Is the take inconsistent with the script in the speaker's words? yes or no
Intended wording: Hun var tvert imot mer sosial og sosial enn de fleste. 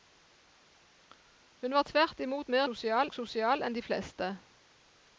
no